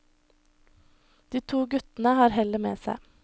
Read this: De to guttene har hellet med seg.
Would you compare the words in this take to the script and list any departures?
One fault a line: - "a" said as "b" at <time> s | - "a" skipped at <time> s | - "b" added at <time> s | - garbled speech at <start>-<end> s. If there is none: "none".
none